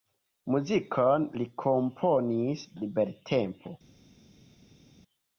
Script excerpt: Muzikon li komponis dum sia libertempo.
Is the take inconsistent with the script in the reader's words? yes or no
yes